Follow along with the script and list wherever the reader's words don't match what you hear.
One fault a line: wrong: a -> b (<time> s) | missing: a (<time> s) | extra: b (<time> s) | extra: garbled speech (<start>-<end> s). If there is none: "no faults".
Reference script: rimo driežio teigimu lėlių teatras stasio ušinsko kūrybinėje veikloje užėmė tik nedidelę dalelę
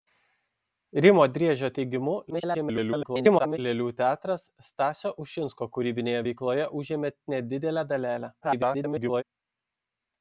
extra: garbled speech (2.3-3.6 s)
missing: tik (7.1 s)
extra: garbled speech (8.4-9.2 s)